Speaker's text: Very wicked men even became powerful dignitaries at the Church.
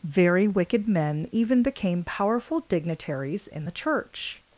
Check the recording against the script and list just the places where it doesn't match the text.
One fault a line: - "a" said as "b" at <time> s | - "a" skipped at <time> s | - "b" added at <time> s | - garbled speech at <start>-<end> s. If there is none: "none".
- "at" said as "in" at 3.5 s